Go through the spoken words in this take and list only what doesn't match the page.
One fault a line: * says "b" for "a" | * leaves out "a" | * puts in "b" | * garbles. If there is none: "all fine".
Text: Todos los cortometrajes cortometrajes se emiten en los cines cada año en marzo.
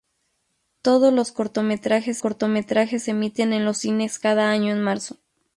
all fine